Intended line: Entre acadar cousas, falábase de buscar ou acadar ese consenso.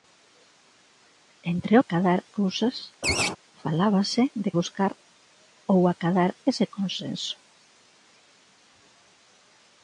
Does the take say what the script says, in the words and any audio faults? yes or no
no